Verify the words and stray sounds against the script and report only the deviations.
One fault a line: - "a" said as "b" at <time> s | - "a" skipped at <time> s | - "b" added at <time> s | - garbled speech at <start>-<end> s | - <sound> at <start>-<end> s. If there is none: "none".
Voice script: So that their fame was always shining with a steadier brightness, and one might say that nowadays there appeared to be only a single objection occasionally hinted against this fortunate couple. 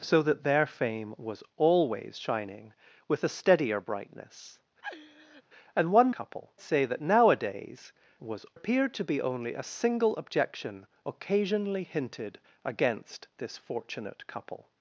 - laugh at 4.8-5.4 s
- "might" said as "couple" at 6.1 s
- "there" said as "was" at 8.2 s